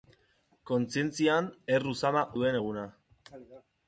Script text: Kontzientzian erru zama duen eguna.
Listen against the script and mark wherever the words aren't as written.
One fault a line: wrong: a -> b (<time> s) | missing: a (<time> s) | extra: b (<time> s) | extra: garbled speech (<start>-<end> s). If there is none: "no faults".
no faults